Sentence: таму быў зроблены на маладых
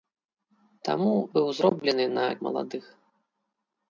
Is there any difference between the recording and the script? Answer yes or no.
no